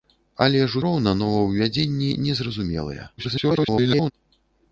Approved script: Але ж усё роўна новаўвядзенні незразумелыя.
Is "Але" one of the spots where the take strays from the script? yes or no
no